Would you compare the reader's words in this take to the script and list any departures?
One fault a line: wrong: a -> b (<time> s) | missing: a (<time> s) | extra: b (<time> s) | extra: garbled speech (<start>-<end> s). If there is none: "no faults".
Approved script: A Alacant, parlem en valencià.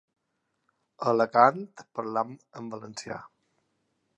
no faults